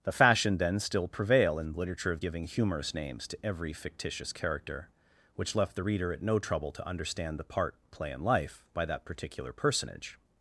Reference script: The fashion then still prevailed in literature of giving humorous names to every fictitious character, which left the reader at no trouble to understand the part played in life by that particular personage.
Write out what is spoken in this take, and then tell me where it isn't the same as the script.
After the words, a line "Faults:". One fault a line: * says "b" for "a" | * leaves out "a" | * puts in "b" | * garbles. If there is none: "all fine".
The fashion then still prevail in literature of giving humorous names to every fictitious character, which left the reader at no trouble to understand the part play in life by that particular personage.
Faults:
* says "prevail" for "prevailed"
* says "play" for "played"